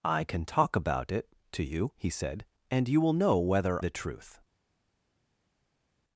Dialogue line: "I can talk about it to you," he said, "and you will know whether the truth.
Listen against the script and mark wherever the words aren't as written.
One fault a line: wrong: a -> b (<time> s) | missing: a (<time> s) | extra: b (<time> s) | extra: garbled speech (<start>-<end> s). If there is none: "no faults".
no faults